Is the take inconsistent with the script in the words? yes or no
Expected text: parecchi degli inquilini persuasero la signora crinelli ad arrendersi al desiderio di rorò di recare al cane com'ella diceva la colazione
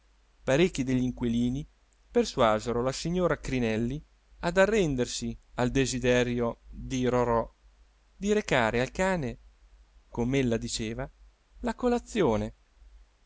no